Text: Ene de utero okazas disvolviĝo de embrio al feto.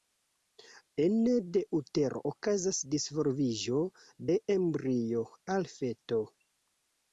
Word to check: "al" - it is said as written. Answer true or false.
true